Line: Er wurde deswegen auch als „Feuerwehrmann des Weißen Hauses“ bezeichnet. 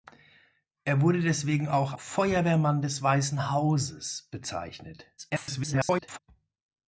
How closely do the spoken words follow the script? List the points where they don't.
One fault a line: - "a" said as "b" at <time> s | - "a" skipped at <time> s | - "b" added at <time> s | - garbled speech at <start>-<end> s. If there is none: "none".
- "als" skipped at 1.9 s
- garbled speech at 5.2-6.2 s